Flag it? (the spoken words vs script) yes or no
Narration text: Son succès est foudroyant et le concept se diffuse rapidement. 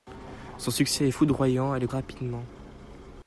yes